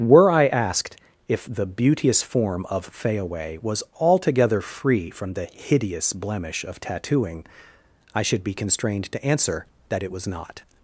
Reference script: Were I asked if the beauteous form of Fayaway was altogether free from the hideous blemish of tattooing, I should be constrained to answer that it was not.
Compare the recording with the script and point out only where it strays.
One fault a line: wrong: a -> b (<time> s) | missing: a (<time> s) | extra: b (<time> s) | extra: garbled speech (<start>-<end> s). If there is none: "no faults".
no faults